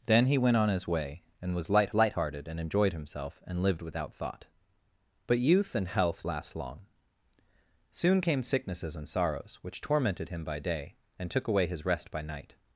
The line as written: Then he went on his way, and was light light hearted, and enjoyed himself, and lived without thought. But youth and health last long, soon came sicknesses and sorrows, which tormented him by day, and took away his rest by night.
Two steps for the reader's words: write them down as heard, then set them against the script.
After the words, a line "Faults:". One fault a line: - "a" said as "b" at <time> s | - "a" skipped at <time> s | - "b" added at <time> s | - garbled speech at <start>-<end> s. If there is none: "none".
Then he went on his way, and was light light hearted, and enjoyed himself, and lived without thought. But youth and health last long, soon came sicknesses and sorrows, which tormented him by day, and took away his rest by night.
Faults:
none